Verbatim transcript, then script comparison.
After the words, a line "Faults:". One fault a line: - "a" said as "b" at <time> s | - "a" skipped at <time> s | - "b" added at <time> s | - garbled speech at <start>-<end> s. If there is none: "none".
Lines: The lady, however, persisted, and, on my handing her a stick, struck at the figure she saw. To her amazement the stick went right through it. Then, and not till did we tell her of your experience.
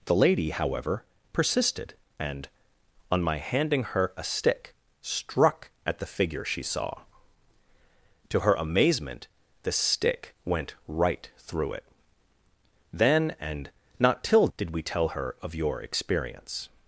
The lady, however, persisted, and, on my handing her a stick, struck at the figure she saw. To her amazement the stick went right through it. Then, and not till did we tell her of your experience.
Faults:
none